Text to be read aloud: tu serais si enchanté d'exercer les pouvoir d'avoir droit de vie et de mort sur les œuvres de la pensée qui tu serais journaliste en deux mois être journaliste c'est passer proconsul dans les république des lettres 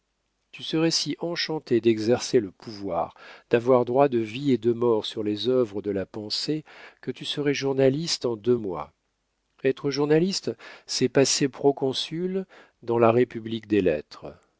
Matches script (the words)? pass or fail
fail